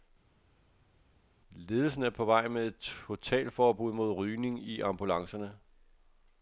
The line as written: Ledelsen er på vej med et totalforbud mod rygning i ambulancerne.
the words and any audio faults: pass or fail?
pass